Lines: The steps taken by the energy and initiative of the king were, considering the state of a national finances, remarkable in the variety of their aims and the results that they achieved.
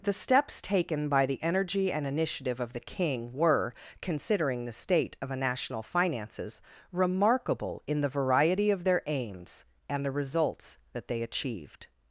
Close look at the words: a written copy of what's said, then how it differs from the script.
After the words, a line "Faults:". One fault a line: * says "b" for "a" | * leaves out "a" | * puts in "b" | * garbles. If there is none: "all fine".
The steps taken by the energy and initiative of the king were, considering the state of a national finances, remarkable in the variety of their aims and the results that they achieved.
Faults:
all fine